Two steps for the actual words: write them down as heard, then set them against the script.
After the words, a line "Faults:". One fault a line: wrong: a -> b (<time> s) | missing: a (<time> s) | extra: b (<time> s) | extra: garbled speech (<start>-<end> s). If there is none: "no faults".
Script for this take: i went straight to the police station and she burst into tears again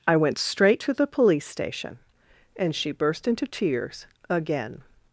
i went straight to the police station and she burst into tears again
Faults:
no faults